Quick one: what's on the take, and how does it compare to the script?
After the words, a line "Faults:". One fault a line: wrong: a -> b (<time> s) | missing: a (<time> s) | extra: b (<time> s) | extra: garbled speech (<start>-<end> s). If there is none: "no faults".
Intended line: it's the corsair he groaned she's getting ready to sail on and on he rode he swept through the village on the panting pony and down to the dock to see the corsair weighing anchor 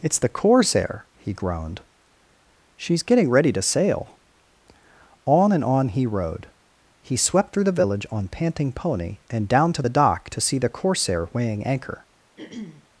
it's the corsair he groaned she's getting ready to sail on and on he rode he swept through the village on panting pony and down to the dock to see the corsair weighing anchor
Faults:
missing: the (8.3 s)